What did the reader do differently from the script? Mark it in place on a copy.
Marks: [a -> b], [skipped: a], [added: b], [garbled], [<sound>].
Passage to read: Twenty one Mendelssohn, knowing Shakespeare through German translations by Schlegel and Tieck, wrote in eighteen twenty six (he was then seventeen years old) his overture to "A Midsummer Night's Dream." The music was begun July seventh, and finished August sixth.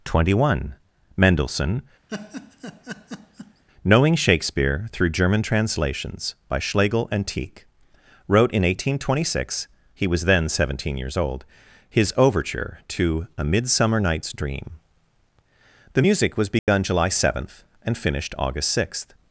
Twenty one Mendelssohn, [laugh] knowing Shakespeare through German translations by Schlegel and Tieck, wrote in eighteen twenty six (he was then seventeen years old) his overture to "A Midsummer Night's Dream." The music was begun [dropout] July seventh, and finished August sixth.